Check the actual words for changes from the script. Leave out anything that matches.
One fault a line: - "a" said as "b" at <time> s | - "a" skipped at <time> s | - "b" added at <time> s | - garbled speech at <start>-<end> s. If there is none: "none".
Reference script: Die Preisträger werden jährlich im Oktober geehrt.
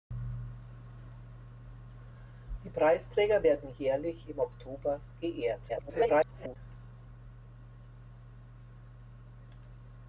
- garbled speech at 5.7-6.6 s